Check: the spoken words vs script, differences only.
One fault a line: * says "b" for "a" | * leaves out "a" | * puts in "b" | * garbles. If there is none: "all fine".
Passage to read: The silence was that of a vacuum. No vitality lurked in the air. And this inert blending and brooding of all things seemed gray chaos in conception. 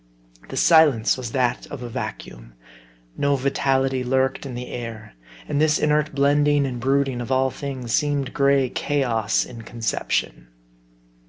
all fine